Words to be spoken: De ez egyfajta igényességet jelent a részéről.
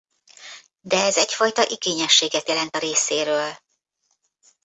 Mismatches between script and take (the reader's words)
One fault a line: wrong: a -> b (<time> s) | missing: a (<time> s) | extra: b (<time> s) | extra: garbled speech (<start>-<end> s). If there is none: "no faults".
no faults